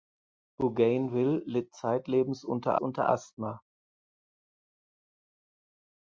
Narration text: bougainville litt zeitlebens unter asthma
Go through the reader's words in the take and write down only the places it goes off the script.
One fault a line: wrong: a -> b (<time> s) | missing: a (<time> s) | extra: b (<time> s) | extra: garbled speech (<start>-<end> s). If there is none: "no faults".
extra: unter (2.8 s)